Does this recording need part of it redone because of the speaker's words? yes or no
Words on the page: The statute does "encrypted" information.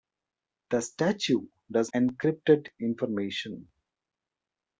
no